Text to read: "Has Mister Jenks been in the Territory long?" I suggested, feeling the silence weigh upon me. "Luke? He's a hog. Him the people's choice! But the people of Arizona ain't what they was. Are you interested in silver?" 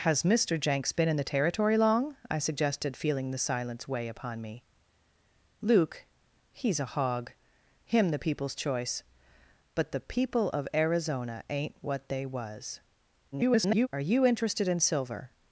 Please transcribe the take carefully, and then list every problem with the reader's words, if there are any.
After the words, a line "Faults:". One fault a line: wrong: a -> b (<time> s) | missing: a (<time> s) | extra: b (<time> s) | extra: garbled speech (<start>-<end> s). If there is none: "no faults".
"Has Mister Jenks been in the Territory long?" I suggested, feeling the silence weigh upon me. "Luke? He's a hog. Him the people's choice! But the people of Arizona ain't what they was. [garbled] Are you interested in silver?"
Faults:
extra: garbled speech (13.3-13.9 s)